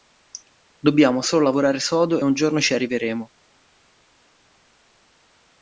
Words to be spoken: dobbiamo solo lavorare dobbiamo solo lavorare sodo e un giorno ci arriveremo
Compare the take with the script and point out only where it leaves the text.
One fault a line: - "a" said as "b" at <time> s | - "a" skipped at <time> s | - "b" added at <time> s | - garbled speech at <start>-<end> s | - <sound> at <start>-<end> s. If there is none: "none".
- "dobbiamo solo lavorare" skipped at 1.8 s